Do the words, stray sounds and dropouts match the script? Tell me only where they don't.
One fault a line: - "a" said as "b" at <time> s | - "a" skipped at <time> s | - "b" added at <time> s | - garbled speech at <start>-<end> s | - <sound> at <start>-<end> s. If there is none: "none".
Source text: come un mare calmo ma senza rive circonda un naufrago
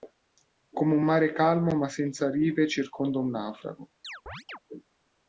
- chirp at 4.0-4.6 s